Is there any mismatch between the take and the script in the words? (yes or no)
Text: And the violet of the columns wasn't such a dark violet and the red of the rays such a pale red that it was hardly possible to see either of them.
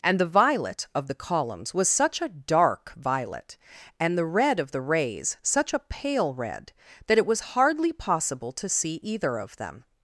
yes